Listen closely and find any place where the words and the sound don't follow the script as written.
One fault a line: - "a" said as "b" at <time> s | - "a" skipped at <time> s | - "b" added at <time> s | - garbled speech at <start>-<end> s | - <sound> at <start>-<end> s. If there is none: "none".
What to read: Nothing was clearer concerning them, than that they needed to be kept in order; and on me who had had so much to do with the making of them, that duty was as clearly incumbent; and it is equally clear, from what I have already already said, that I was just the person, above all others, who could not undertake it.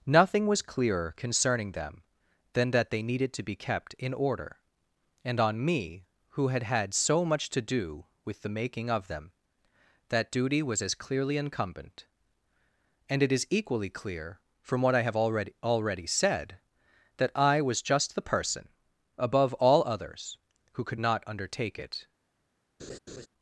- laugh at 22.8-23.3 s